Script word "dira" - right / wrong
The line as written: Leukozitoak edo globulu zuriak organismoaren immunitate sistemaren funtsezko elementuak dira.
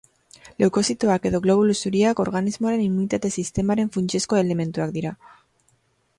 right